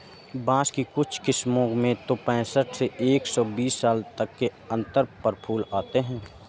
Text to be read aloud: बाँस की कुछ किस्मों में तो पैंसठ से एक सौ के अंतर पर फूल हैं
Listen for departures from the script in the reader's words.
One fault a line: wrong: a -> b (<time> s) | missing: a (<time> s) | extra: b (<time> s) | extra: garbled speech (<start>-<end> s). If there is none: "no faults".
extra: बीस साल तक (3.5 s)
extra: आते (5.7 s)